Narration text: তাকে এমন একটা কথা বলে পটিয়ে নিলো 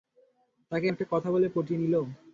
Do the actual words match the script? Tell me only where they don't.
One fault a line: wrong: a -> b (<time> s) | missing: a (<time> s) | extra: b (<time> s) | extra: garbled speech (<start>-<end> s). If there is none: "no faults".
missing: এমন (0.9 s)